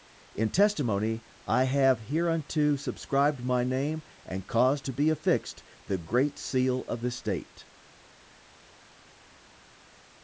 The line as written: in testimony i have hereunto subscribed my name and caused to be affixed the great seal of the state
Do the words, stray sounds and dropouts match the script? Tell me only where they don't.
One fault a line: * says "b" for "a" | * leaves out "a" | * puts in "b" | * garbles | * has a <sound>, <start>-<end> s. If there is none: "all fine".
all fine